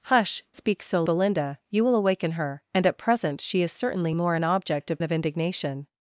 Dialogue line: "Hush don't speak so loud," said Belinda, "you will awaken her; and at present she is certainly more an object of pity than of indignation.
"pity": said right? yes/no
no